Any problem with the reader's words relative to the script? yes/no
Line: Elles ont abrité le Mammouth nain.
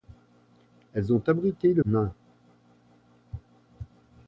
yes